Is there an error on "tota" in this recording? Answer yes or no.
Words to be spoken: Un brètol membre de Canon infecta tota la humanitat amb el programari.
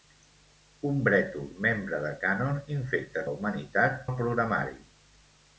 yes